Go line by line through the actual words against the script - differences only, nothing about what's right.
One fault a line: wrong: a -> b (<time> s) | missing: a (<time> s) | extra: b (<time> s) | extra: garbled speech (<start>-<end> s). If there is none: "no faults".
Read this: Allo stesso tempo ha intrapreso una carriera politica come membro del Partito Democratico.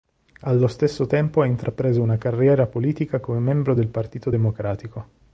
no faults